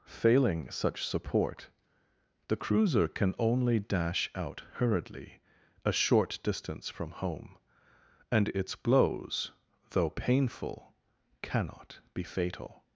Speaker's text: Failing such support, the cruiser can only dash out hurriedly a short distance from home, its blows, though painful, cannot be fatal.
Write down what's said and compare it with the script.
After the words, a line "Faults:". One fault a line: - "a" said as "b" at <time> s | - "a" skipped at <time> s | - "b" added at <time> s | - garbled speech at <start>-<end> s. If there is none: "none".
Failing such support, the cruiser can only dash out hurriedly a short distance from home, and its blows, though painful, cannot be fatal.
Faults:
- "and" added at 8.3 s